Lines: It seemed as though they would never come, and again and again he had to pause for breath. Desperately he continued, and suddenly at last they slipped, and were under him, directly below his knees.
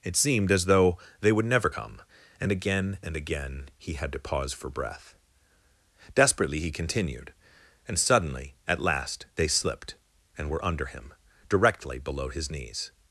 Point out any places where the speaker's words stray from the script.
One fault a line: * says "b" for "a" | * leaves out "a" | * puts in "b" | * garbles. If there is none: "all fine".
all fine